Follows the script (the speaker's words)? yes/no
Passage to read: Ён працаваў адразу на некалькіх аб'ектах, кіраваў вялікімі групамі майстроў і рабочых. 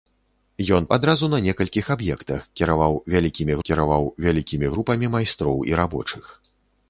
no